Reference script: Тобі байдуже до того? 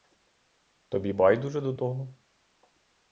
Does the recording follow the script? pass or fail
pass